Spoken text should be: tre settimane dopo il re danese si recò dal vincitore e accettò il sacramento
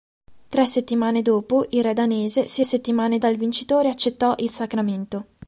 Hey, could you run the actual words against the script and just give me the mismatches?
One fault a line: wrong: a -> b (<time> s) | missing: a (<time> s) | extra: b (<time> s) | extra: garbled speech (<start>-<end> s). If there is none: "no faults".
wrong: recò -> settimane (2.6 s)